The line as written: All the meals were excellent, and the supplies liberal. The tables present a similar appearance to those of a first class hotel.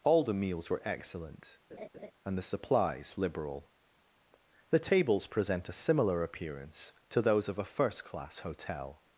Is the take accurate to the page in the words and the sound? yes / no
no